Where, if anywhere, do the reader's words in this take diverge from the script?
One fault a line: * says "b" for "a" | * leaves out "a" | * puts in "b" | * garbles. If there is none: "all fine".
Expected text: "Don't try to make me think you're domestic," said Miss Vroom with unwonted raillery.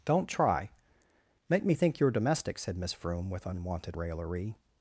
* leaves out "to"